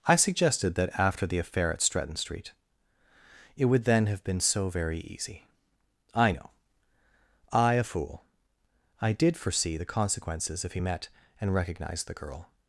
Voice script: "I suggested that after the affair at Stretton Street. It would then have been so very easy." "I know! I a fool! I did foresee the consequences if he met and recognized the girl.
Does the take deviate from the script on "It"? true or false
false